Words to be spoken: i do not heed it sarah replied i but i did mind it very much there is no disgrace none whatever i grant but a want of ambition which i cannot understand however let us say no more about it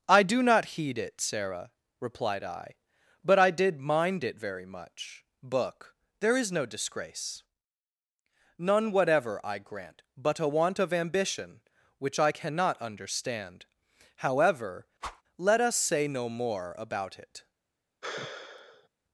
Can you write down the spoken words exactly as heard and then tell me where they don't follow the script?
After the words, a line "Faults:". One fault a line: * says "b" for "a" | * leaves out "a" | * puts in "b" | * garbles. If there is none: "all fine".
i do not heed it sarah replied i but i did mind it very much book there is no disgrace none whatever i grant but a want of ambition which i cannot understand however let us say no more about it
Faults:
* puts in "book"